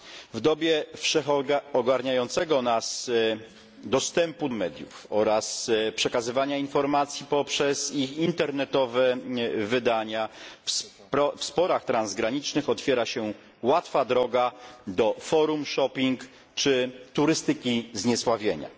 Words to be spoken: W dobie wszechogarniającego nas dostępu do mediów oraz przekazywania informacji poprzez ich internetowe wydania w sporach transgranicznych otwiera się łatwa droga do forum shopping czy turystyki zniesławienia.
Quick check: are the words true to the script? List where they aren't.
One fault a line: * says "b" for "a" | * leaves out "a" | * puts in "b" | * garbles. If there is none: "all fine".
* leaves out "do"